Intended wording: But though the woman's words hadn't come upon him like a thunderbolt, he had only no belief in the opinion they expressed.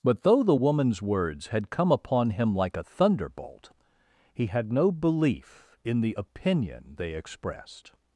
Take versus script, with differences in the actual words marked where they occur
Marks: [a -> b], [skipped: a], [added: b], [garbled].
But though the woman's words [hadn't -> had] come upon him like a thunderbolt, he had [skipped: only] no belief in the opinion they expressed.